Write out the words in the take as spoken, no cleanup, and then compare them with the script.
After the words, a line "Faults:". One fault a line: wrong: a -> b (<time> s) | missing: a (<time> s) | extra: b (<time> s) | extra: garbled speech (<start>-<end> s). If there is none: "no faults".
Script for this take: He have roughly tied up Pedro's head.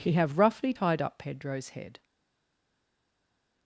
He have roughly tied up Pedro's head.
Faults:
no faults